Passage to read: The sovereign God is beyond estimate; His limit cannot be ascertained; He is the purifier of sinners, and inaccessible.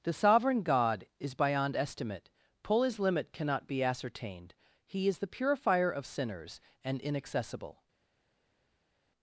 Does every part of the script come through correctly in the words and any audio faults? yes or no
no